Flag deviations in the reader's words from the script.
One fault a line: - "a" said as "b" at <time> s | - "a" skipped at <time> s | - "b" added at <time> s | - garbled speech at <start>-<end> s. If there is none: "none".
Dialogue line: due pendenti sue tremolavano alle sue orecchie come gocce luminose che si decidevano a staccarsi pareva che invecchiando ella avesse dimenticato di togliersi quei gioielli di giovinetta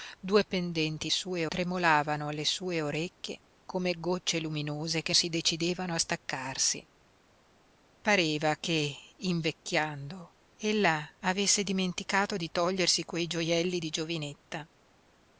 none